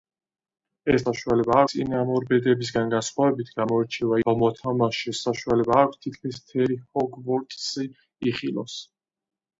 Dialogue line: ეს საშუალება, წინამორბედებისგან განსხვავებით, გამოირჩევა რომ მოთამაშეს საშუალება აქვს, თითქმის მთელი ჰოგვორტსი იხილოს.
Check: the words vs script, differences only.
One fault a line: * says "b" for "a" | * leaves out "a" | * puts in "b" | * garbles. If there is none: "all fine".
all fine